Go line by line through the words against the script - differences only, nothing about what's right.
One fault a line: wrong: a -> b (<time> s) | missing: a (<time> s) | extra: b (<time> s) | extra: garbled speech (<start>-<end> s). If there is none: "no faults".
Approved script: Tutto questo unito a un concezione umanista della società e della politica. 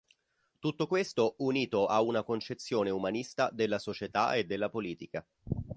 wrong: un -> una (2.0 s)